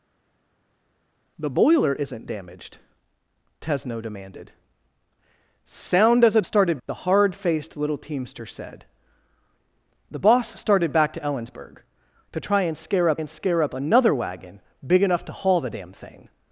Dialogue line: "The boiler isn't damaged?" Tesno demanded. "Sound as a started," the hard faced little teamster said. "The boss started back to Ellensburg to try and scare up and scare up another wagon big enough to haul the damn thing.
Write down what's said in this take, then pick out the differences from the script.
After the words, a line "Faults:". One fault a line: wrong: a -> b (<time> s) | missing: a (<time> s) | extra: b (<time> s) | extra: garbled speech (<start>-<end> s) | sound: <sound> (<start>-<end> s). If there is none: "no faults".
"The boiler isn't damaged?" Tesno demanded. "Sound as a started," the hard faced little teamster said. "The boss started back to Ellensburg to try and scare up and scare up another wagon big enough to haul the damn thing.
Faults:
no faults